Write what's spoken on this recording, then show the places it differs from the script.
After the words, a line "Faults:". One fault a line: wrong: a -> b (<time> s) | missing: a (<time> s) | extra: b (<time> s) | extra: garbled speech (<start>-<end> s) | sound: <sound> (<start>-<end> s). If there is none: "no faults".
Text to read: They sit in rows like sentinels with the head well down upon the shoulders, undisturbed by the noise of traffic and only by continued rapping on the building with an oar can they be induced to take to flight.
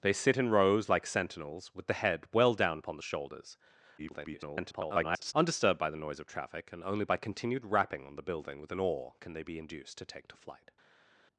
They sit in rows like sentinels with the head well down upon the shoulders, [garbled] undisturbed by the noise of traffic and only by continued rapping on the building with an oar can they be induced to take to flight.
Faults:
extra: garbled speech (4.0-5.3 s)